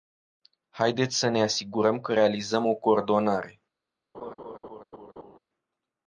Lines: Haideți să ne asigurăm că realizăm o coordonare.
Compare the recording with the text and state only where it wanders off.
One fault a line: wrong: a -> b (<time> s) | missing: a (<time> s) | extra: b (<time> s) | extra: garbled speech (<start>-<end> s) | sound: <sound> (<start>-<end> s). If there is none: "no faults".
sound: laugh (4.1-5.4 s)